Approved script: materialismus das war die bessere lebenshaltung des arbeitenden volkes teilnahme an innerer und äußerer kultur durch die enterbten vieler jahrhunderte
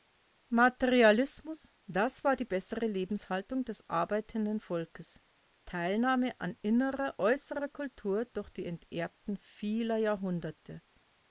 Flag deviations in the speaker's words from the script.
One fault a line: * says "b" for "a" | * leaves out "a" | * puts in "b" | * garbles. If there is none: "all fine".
* leaves out "und"